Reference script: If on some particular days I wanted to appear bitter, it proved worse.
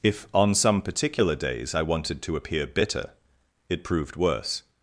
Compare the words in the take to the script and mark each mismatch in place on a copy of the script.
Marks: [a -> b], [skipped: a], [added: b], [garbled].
If on some particular days I wanted to appear bitter, it proved worse.